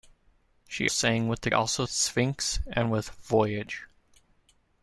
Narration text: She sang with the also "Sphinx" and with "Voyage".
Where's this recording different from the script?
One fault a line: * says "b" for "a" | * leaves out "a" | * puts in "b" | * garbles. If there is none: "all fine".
all fine